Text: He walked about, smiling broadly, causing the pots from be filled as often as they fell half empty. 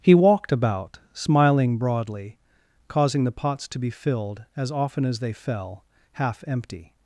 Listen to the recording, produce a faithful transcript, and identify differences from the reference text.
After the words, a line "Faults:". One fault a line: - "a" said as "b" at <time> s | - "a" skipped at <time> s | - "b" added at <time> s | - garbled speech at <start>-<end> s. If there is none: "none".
He walked about, smiling broadly, causing the pots to be filled as often as they fell half empty.
Faults:
- "from" said as "to" at 3.7 s